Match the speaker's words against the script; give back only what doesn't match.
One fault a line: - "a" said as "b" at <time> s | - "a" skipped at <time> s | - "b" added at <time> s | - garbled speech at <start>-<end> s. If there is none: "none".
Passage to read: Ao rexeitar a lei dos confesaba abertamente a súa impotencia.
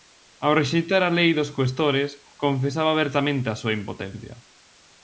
- "cuestores" added at 1.6 s